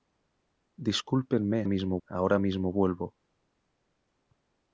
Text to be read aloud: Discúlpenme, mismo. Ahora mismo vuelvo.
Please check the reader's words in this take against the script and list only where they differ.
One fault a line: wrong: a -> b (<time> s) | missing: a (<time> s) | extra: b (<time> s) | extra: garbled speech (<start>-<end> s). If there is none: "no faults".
no faults